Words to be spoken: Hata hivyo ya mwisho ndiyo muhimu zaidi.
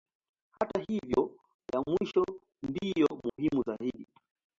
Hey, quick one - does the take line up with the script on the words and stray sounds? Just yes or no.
no